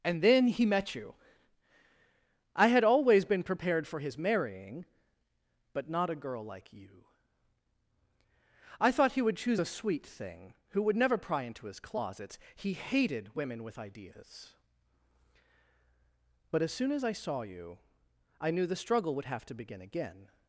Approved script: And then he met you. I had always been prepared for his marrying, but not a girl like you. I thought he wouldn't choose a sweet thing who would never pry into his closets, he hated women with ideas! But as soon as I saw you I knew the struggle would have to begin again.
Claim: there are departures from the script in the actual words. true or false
true